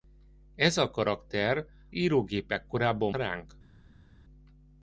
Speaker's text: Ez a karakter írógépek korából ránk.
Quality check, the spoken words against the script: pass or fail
pass